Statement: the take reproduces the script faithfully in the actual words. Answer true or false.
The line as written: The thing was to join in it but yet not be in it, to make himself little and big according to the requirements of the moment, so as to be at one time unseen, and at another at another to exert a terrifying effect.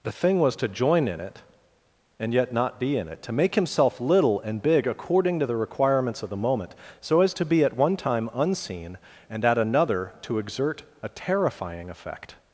false